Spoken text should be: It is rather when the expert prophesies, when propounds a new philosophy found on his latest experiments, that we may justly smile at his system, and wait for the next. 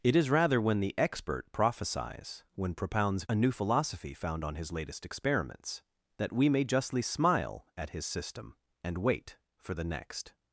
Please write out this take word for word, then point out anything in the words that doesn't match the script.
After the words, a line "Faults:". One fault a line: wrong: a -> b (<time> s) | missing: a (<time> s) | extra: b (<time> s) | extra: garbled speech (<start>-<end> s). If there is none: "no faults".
It is rather when the expert prophesies, when propounds a new philosophy found on his latest experiments, that we may justly smile at his system, and wait for the next.
Faults:
no faults